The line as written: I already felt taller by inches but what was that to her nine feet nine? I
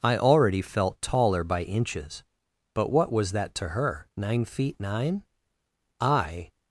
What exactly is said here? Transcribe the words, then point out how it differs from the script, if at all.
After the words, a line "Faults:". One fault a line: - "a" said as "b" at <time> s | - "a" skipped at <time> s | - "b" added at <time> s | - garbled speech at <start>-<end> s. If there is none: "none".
I already felt taller by inches but what was that to her nine feet nine? I
Faults:
none